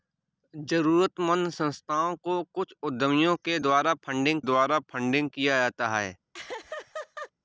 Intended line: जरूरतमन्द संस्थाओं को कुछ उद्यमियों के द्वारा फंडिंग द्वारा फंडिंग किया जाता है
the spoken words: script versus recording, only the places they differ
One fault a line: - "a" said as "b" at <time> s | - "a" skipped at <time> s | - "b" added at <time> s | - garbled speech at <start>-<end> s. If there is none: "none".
none